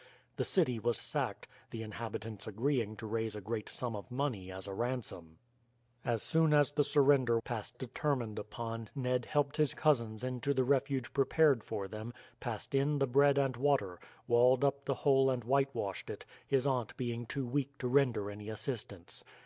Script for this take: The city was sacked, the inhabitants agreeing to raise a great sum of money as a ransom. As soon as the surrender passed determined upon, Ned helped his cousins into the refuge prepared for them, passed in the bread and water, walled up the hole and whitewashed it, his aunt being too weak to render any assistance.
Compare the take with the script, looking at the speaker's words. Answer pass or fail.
pass